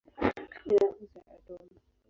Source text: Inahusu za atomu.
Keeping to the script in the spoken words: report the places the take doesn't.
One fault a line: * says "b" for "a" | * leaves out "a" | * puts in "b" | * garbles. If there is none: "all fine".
all fine